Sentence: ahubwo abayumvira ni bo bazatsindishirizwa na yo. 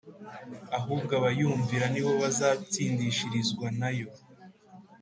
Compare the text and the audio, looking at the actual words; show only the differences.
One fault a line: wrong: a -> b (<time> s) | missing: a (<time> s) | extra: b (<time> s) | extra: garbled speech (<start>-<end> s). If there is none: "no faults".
no faults